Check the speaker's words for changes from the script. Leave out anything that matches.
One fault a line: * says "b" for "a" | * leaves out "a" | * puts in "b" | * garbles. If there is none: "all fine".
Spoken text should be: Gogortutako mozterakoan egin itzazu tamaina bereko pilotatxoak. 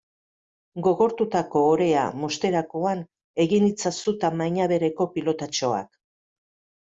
* puts in "orea"